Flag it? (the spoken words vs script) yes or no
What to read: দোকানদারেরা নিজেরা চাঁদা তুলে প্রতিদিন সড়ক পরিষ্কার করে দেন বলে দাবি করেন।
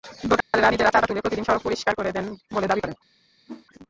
no